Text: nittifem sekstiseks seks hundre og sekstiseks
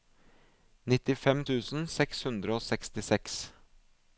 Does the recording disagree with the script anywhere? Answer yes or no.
yes